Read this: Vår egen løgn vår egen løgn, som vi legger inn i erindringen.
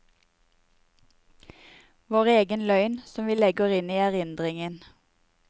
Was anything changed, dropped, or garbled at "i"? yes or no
no